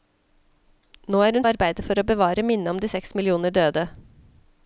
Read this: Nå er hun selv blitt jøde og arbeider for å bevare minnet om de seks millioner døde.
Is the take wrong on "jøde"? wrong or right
wrong